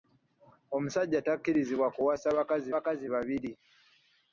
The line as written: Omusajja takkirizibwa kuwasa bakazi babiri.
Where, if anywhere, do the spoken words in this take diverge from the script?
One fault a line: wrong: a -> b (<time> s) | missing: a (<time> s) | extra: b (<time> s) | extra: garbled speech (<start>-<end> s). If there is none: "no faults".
extra: bakazi (2.7 s)